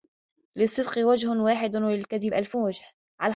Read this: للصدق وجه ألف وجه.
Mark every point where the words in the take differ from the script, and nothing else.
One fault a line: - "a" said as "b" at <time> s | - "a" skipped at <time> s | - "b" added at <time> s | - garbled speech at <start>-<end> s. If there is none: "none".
- "واحد وللكذب" added at 1.3 s